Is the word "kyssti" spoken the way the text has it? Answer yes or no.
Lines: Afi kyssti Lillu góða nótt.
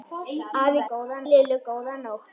no